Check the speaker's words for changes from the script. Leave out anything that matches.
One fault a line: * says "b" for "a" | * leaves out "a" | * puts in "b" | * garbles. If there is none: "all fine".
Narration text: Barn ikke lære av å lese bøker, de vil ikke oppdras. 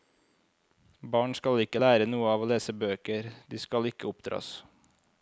* puts in "skal"
* puts in "noe"
* says "skal" for "vil"